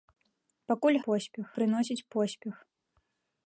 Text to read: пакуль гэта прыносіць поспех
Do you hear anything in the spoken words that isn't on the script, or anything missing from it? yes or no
yes